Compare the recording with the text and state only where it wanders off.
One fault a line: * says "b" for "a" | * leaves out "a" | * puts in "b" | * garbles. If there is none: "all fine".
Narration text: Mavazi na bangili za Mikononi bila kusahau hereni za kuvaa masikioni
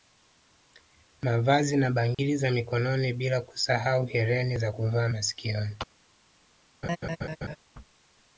all fine